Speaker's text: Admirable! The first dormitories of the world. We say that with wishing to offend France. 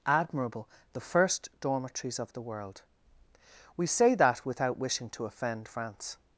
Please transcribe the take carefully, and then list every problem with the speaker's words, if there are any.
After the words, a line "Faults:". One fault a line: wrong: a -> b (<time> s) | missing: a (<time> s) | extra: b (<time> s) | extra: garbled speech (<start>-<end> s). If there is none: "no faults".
Admirable! The first dormitories of the world. We say that without wishing to offend France.
Faults:
wrong: with -> without (4.5 s)